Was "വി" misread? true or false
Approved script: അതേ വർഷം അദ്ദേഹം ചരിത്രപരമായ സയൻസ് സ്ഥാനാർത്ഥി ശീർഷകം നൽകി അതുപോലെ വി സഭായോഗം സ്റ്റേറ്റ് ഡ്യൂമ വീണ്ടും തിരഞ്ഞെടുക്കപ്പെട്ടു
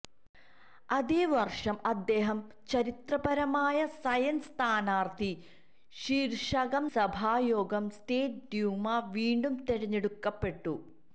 true